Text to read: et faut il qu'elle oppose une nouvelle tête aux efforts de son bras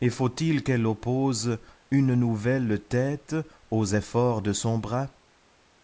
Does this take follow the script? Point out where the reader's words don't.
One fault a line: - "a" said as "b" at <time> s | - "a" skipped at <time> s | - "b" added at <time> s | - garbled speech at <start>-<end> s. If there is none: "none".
none